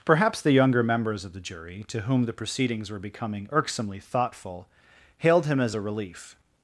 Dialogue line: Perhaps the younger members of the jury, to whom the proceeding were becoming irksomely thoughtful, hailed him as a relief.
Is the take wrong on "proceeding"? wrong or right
wrong